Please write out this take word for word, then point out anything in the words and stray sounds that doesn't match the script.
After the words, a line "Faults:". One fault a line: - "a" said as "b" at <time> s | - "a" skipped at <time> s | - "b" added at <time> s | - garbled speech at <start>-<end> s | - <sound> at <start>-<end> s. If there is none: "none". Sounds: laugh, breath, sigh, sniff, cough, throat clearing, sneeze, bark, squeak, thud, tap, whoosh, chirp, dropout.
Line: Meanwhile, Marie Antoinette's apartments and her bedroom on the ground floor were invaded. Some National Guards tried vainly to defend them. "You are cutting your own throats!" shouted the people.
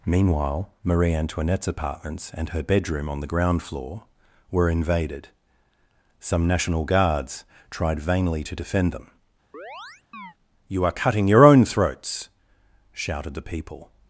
Meanwhile, Marie Antoinette's apartments and her bedroom on the ground floor were invaded. Some National Guards tried vainly to defend them. "You are cutting your own throats!" shouted the people.
Faults:
- chirp at 9.5-10.3 s